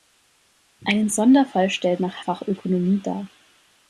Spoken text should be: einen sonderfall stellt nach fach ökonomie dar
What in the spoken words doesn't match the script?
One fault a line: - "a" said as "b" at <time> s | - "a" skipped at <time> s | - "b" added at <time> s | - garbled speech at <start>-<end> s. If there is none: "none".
none